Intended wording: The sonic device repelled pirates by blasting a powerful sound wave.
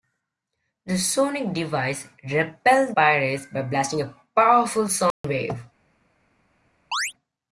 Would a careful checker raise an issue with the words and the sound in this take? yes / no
yes